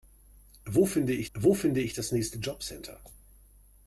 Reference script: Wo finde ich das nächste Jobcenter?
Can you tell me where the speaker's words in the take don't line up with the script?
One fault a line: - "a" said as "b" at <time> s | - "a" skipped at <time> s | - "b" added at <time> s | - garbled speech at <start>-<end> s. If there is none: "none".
- "wo finde ich" added at 1.3 s